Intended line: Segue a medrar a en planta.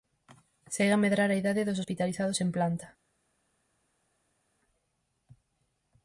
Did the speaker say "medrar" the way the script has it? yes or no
yes